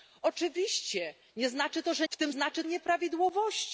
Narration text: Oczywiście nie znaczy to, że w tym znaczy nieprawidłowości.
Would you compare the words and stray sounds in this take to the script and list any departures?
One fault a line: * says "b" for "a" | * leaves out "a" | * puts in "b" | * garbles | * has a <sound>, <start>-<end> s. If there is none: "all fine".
all fine